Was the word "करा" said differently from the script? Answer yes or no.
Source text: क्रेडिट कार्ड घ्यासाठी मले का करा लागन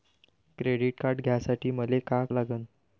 yes